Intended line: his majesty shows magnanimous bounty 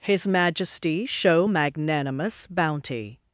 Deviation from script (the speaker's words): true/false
true